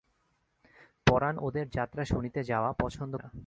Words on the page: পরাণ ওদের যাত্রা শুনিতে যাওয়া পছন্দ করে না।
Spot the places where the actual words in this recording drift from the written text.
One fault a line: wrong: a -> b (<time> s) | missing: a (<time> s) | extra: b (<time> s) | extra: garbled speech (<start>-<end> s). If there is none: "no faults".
missing: করে (3.2 s)